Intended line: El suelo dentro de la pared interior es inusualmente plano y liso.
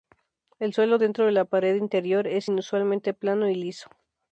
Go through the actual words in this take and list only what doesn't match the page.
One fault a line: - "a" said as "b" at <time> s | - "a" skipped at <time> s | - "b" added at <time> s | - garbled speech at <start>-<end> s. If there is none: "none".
none